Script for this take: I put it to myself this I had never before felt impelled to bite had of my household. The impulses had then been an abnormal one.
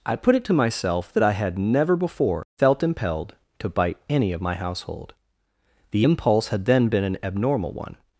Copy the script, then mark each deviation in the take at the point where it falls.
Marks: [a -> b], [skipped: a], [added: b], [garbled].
I put it to myself [this -> that] I had never before felt impelled to bite [had -> any] of my household. The [impulses -> impulse] had then been an abnormal one.